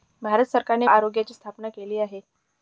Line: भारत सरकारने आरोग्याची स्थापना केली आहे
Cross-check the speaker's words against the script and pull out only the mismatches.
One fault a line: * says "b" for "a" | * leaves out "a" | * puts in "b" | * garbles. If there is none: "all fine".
all fine